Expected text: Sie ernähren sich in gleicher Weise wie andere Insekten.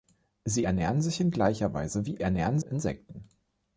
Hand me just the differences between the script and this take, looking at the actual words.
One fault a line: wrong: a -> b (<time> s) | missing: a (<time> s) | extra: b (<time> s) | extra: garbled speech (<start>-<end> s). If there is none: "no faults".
wrong: andere -> ernähren (2.2 s)